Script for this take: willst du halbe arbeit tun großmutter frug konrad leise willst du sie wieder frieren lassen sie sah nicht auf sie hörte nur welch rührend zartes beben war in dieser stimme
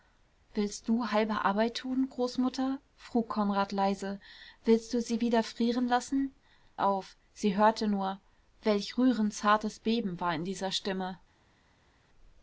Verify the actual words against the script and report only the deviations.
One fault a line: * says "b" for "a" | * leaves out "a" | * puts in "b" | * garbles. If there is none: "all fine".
* leaves out "sie sah nicht"